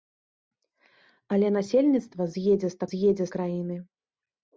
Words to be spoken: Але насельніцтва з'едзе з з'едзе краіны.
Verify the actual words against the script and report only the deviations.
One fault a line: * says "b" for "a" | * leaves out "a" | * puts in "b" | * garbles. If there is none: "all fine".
all fine